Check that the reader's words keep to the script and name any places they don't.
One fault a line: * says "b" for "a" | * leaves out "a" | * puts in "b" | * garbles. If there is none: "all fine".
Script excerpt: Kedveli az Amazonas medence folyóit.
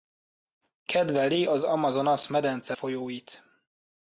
all fine